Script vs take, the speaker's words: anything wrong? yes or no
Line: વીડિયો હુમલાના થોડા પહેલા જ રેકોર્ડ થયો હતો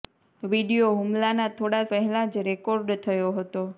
no